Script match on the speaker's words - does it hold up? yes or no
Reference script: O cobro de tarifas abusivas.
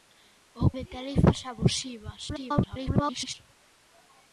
no